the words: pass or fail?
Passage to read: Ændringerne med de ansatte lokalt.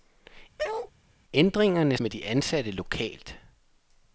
pass